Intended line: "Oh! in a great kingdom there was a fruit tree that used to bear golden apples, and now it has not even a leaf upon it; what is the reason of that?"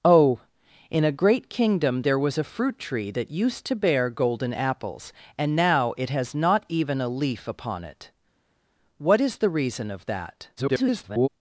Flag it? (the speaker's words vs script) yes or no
yes